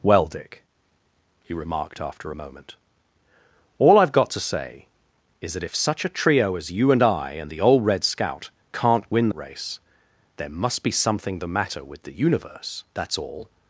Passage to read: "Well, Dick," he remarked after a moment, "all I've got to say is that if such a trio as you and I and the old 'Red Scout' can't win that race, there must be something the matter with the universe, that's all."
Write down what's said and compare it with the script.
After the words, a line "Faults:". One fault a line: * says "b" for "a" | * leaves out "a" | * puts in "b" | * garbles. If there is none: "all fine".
"Well, Dick," he remarked after a moment, "all I've got to say is that if such a trio as you and I and the old 'Red Scout' can't win race, there must be something the matter with the universe, that's all."
Faults:
* leaves out "that"